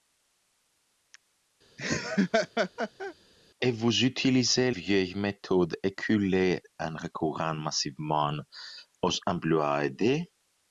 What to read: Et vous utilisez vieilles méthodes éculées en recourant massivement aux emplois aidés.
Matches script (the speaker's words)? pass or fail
pass